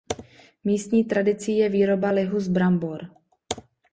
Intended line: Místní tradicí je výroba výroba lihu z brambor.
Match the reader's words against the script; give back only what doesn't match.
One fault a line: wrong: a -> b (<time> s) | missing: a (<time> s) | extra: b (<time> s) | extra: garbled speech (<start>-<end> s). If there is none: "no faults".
missing: výroba (2.1 s)